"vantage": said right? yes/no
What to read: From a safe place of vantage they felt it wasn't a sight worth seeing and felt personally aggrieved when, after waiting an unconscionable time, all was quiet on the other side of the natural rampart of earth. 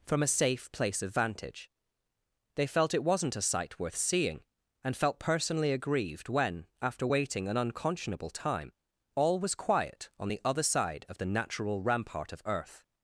yes